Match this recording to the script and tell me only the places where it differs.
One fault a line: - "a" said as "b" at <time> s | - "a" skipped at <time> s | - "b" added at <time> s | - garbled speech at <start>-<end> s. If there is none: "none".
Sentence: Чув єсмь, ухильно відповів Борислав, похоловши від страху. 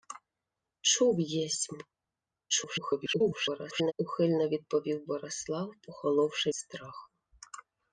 - garbled speech at 2.5-3.9 s
- "від" skipped at 6.5 s